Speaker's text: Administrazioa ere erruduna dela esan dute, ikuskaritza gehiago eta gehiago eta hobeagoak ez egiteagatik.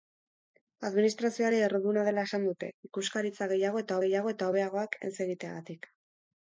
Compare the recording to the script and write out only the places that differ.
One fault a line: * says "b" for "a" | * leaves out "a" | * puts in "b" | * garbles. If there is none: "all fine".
all fine